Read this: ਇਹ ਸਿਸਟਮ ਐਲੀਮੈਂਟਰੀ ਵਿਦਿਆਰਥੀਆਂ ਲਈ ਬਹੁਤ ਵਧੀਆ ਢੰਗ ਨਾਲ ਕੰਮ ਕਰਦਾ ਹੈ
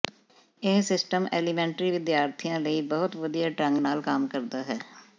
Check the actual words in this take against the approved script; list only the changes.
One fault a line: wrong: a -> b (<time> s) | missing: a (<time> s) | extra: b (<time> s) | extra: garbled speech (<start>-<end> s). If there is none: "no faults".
no faults